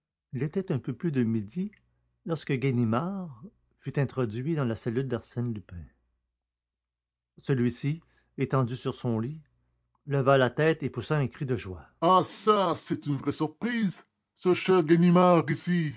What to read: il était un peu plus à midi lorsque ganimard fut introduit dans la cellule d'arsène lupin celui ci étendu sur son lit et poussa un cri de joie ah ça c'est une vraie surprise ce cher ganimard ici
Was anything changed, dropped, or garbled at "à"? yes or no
yes